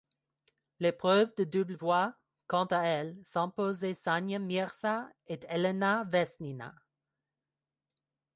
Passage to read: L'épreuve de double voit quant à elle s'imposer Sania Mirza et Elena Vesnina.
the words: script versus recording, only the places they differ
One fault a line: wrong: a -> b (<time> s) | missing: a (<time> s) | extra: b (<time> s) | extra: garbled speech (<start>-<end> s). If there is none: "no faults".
no faults